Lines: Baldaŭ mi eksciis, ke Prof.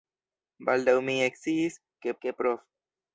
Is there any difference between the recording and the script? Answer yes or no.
yes